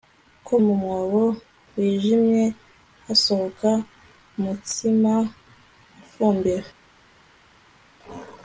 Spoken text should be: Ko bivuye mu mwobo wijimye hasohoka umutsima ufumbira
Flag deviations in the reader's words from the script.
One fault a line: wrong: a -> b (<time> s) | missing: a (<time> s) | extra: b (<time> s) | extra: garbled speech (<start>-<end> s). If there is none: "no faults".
missing: bivuye (0.5 s)